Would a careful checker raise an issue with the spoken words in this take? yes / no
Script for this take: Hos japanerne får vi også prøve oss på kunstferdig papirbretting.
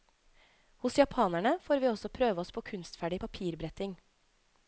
no